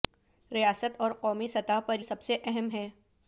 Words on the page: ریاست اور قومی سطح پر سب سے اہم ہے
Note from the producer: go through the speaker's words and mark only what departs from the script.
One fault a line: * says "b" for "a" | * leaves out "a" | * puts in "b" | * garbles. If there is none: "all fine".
all fine